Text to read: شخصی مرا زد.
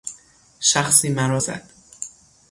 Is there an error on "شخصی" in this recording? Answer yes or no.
no